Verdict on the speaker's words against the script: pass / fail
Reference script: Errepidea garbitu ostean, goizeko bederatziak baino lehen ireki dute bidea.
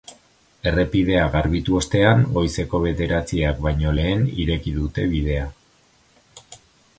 pass